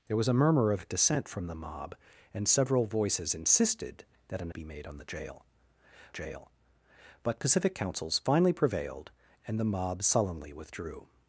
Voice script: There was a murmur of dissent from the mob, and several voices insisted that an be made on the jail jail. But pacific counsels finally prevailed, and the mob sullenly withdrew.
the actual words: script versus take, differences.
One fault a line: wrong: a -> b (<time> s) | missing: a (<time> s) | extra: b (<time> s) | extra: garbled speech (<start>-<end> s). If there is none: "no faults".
no faults